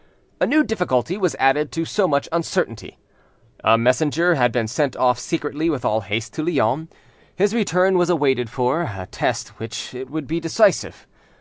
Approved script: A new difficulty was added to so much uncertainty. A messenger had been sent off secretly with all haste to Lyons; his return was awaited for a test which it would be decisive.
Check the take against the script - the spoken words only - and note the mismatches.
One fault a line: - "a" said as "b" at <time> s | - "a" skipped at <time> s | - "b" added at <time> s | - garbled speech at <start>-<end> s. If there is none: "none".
none